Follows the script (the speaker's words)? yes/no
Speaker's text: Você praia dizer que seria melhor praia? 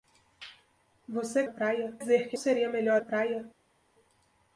yes